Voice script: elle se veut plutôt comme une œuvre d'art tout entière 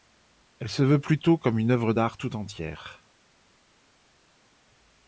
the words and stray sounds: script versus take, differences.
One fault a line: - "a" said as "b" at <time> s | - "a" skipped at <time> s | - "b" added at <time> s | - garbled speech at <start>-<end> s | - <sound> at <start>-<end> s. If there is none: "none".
none